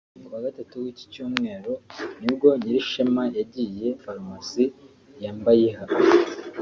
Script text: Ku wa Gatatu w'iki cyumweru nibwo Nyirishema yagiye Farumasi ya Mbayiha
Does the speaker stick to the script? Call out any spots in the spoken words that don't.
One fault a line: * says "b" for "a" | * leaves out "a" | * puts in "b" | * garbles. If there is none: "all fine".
all fine